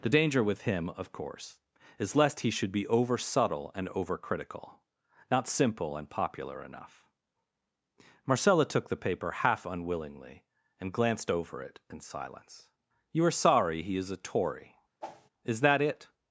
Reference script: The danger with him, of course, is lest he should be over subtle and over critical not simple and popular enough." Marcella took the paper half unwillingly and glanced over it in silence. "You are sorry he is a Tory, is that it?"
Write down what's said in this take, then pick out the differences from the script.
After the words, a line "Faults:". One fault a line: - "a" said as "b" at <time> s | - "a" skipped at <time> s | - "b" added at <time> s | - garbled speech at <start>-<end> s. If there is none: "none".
The danger with him, of course, is lest he should be over subtle and over critical not simple and popular enough." Marcella took the paper half unwillingly and glanced over it in silence. "You are sorry he is a Tory, is that it?"
Faults:
none